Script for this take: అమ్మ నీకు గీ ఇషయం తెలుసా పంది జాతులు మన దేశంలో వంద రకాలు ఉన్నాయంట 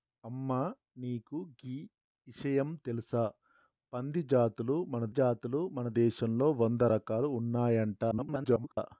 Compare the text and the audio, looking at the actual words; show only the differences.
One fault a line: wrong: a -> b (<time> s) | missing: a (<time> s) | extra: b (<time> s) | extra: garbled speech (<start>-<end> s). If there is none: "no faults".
extra: జాతులు మన (5.1 s)
extra: garbled speech (8.1-8.8 s)